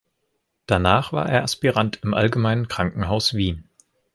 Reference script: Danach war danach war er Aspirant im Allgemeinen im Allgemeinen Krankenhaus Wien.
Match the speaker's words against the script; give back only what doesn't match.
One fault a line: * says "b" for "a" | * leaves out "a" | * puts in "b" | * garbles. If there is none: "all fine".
* leaves out "danach war"
* leaves out "im Allgemeinen"